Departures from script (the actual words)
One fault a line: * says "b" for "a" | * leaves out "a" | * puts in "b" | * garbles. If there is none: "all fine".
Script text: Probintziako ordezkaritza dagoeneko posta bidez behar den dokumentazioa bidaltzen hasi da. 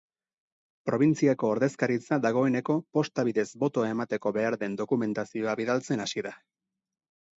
* puts in "botoa emateko"